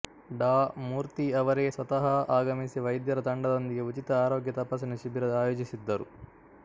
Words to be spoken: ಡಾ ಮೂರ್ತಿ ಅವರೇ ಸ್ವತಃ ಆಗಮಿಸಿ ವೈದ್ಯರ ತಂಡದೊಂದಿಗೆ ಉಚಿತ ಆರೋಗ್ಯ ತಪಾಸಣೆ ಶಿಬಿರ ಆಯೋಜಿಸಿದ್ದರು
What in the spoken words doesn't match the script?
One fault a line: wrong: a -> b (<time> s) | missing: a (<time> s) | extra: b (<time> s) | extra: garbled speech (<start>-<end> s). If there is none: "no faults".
no faults